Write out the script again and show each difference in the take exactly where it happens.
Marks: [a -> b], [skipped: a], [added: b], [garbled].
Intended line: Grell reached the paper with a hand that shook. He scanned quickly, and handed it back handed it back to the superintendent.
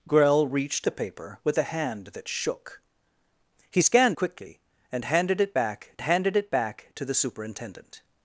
Grell reached the paper with a hand that shook. He scanned quickly, and handed it back handed it back to the superintendent.